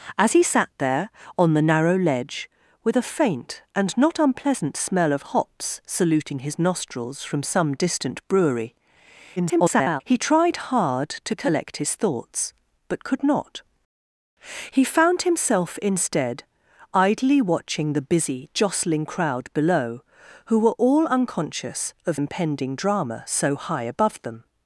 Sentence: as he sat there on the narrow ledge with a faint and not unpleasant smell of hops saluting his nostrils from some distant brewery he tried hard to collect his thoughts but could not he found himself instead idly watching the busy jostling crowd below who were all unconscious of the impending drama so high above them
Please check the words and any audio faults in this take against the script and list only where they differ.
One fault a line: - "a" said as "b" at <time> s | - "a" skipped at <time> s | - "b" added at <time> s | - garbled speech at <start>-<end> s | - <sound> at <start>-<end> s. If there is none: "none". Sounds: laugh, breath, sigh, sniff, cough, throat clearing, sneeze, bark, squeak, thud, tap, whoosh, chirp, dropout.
- garbled speech at 9.4-10.0 s
- "the" skipped at 22.2 s